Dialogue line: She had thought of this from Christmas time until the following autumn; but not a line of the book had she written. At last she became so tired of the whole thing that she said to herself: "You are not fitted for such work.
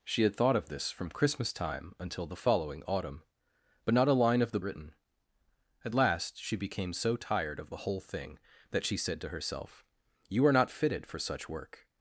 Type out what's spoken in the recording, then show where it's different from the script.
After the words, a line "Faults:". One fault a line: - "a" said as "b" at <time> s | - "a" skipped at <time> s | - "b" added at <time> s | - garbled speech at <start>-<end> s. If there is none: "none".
She had thought of this from Christmas time until the following autumn; but not a line of the written. At last she became so tired of the whole thing that she said to herself: "You are not fitted for such work.
Faults:
- "book had she" skipped at 4.6 s